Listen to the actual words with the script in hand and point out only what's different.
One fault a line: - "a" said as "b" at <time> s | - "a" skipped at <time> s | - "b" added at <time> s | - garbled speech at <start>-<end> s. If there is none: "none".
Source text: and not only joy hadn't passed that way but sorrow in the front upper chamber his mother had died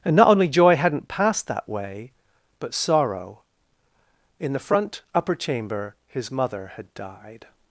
none